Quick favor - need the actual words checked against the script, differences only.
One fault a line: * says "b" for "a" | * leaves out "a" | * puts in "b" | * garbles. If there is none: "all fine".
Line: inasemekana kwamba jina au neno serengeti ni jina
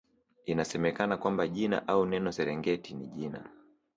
all fine